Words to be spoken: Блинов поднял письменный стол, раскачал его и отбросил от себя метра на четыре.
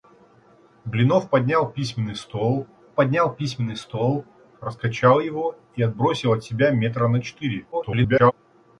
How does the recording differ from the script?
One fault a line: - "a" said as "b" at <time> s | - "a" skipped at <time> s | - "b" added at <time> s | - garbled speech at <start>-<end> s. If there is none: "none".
- "поднял письменный стол" added at 2.9 s
- garbled speech at 7.7-8.3 s